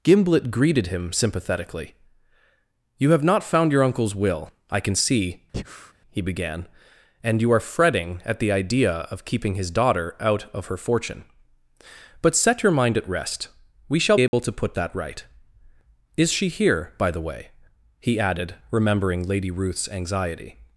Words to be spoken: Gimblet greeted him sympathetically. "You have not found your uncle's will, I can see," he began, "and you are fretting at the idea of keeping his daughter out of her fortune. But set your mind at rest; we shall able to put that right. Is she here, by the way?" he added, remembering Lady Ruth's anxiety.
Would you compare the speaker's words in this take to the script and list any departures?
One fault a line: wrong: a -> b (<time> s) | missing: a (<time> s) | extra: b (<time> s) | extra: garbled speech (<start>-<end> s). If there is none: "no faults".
no faults